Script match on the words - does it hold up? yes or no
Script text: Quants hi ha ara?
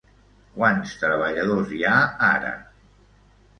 no